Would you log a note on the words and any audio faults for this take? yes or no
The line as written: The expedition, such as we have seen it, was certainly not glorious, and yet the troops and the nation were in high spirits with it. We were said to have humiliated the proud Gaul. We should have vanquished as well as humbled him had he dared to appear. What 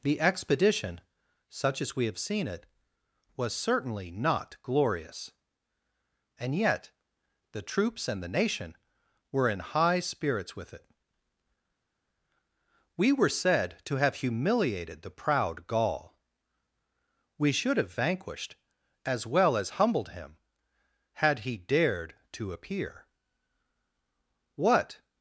no